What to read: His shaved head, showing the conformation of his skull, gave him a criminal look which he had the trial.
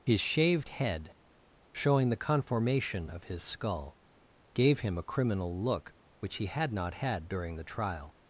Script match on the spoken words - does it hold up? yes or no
no